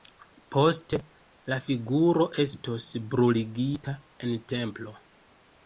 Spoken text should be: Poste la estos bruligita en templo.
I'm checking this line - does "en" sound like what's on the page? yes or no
yes